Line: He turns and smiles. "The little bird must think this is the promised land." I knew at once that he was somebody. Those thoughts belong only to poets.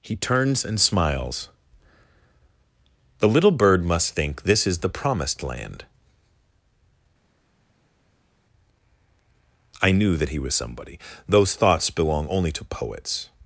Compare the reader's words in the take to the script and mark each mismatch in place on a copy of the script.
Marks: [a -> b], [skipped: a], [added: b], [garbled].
He turns and smiles. "The little bird must think this is the promised land." I knew [skipped: at once] that he was somebody. Those thoughts belong only to poets.